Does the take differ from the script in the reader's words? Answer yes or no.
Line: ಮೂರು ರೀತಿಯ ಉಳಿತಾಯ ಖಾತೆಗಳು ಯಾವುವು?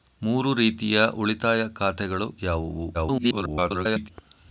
yes